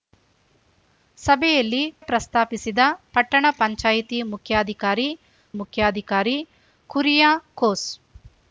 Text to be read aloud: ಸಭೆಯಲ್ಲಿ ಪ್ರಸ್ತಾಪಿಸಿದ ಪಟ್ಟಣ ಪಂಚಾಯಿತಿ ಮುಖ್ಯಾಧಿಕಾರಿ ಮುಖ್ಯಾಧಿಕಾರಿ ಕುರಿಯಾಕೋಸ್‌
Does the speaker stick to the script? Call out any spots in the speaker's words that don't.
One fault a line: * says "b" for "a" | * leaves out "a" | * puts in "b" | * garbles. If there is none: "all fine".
all fine